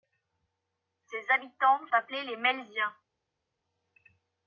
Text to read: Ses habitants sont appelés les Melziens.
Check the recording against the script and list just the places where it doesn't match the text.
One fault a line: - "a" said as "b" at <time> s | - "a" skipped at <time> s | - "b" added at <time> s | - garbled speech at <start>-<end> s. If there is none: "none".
- "sont" skipped at 1.9 s